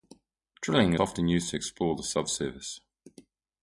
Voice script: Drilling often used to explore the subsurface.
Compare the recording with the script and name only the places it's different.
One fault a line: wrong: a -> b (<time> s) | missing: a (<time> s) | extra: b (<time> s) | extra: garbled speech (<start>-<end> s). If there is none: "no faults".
no faults